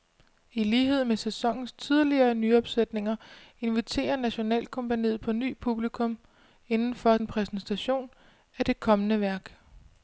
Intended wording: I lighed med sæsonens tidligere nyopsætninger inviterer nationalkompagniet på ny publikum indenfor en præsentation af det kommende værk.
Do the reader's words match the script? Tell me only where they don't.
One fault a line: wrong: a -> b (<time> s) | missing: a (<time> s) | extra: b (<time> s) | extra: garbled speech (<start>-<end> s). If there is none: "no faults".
no faults